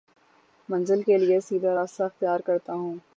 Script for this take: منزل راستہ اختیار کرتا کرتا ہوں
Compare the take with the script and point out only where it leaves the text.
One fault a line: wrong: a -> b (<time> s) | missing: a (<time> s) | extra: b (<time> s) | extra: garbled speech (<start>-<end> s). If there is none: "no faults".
extra: کے لیے سیدھا (1.0 s)
missing: کرتا (2.7 s)